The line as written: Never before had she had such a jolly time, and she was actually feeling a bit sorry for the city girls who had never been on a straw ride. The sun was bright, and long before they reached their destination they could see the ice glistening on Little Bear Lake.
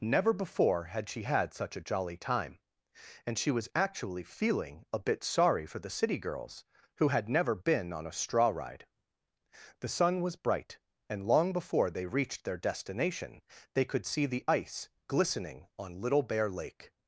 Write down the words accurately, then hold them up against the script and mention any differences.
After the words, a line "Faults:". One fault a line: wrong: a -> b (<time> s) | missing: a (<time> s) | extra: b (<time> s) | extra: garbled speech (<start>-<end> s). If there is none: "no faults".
Never before had she had such a jolly time, and she was actually feeling a bit sorry for the city girls who had never been on a straw ride. The sun was bright, and long before they reached their destination they could see the ice glistening on Little Bear Lake.
Faults:
no faults